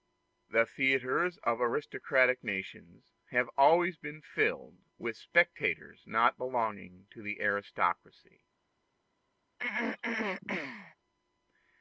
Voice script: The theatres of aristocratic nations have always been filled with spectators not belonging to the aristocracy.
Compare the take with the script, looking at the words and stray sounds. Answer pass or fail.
fail